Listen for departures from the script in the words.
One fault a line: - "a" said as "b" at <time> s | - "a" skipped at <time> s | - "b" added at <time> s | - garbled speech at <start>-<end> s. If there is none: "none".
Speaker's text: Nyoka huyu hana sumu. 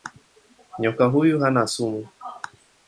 none